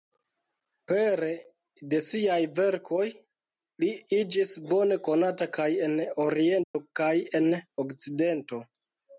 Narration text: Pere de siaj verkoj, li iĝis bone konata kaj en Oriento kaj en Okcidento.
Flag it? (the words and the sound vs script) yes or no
yes